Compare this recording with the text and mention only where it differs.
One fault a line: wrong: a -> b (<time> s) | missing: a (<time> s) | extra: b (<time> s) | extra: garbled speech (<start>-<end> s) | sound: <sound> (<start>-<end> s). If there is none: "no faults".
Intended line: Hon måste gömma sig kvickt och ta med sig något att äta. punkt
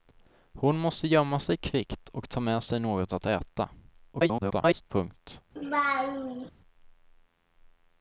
extra: garbled speech (4.1-4.8 s)
sound: laugh (5.6-6.5 s)